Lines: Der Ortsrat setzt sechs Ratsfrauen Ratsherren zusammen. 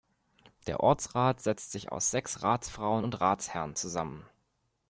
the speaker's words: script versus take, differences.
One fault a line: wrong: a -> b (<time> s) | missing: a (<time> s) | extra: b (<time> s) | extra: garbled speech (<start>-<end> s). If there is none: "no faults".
extra: sich aus (1.7 s)
extra: und (3.0 s)